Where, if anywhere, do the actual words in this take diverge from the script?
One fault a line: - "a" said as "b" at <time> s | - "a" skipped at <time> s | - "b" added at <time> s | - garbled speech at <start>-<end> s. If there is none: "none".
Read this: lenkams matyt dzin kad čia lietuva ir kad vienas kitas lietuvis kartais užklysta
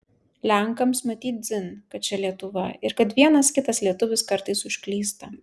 none